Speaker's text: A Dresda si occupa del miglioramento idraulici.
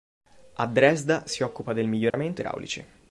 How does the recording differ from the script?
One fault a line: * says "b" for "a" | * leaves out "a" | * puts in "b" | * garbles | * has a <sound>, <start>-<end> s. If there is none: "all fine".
* has a dropout, 2.1-2.1 s